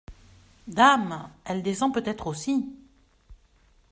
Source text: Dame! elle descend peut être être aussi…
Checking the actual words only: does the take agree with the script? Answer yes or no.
no